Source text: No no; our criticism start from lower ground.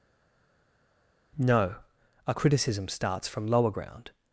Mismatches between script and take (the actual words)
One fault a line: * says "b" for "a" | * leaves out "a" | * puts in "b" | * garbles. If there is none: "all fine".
* leaves out "no"
* says "starts" for "start"